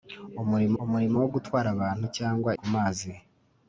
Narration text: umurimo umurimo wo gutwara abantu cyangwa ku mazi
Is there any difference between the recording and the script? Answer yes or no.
no